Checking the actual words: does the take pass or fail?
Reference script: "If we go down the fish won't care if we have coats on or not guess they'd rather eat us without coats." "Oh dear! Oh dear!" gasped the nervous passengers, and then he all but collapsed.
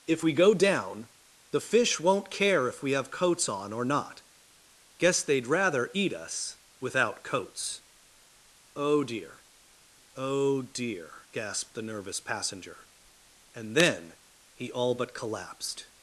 fail